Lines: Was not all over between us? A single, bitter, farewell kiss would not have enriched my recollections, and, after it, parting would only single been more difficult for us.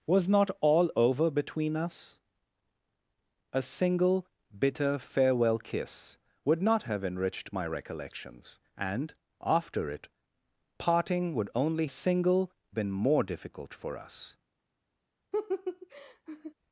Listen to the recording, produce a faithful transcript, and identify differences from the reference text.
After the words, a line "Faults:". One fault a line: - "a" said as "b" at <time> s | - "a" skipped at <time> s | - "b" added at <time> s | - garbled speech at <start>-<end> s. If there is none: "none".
Was not all over between us? A single, bitter, farewell kiss would not have enriched my recollections, and, after it, parting would only single been more difficult for us.
Faults:
none